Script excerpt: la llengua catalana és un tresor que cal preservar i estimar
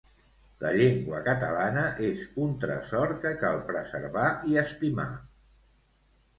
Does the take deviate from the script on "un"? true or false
false